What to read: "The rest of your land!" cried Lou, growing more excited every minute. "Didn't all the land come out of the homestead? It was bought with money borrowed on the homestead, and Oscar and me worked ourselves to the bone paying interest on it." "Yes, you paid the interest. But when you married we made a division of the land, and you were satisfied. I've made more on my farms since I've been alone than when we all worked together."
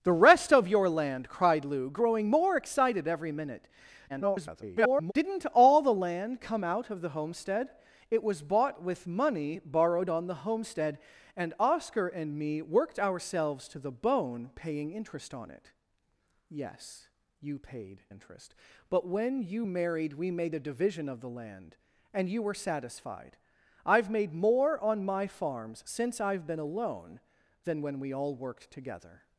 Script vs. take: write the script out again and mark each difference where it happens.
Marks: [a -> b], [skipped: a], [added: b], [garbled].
"The rest of your land!" cried Lou, growing more excited every minute. [garbled] "Didn't all the land come out of the homestead? It was bought with money borrowed on the homestead, and Oscar and me worked ourselves to the bone paying interest on it." "Yes, you paid [skipped: the] interest. But when you married we made a division of the land, and you were satisfied. I've made more on my farms since I've been alone than when we all worked together."